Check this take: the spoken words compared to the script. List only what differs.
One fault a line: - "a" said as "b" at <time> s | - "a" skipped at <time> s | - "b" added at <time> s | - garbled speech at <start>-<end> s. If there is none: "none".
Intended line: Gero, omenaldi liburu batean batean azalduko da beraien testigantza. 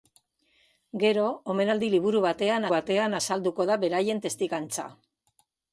none